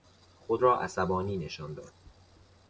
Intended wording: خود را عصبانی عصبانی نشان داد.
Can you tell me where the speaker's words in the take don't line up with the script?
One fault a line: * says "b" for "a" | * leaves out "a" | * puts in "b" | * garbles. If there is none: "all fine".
* leaves out "عصبانی"